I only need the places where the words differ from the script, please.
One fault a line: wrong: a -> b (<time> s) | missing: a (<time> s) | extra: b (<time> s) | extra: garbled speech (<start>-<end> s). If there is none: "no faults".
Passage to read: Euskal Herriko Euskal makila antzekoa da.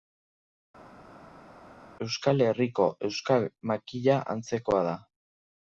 no faults